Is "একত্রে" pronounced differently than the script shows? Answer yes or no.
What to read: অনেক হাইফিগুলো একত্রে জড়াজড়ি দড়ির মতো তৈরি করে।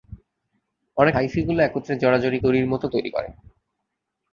no